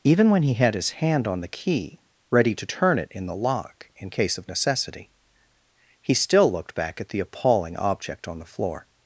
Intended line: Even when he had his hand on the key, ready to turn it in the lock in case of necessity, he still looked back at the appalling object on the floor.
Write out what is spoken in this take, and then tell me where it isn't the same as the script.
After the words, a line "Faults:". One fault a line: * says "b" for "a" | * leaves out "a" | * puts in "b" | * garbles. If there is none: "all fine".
Even when he had his hand on the key, ready to turn it in the lock in case of necessity, he still looked back at the appalling object on the floor.
Faults:
all fine